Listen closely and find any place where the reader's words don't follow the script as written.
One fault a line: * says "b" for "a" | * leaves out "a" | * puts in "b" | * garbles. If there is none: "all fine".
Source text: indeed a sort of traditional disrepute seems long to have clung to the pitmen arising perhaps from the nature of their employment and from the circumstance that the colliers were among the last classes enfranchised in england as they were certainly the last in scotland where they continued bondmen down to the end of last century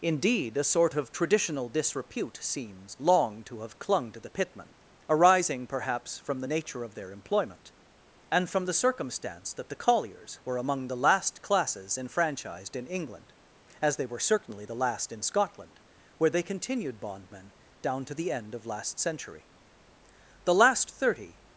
* puts in "the last thirty"